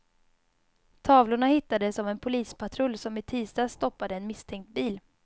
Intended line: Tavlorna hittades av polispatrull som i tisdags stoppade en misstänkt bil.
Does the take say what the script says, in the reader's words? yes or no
no